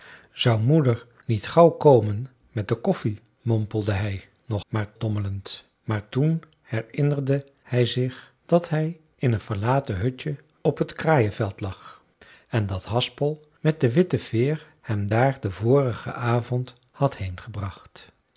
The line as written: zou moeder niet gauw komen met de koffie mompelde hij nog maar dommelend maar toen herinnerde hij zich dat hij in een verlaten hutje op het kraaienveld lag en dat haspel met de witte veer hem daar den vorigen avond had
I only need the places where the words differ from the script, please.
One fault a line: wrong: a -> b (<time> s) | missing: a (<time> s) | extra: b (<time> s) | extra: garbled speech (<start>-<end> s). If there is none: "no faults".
no faults